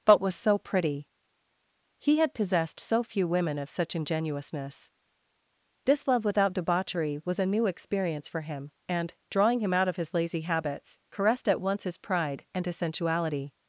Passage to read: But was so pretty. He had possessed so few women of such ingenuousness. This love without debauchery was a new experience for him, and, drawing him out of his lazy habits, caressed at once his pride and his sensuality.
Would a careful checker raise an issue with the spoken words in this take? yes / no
no